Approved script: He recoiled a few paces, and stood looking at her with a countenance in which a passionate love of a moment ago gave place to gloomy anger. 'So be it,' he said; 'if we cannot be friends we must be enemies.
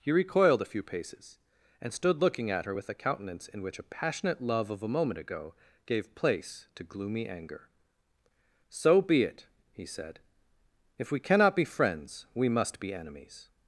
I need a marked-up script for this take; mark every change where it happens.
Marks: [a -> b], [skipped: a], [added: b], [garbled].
He recoiled a few paces, and stood looking at her with a countenance in which a passionate love of a moment ago gave place to gloomy anger. 'So be it,' he said; 'if we cannot be friends we must be enemies.